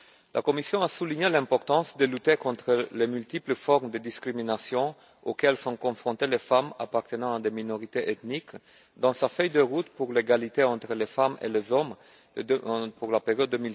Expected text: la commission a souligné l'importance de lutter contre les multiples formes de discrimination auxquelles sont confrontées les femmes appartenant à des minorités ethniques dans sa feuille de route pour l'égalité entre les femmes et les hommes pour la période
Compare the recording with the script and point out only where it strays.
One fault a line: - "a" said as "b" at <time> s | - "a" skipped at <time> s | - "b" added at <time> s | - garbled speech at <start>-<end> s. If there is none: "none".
none